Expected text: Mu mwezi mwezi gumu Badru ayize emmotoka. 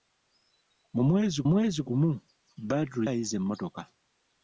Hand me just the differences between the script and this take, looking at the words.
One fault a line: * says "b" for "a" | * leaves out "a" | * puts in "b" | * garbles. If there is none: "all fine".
all fine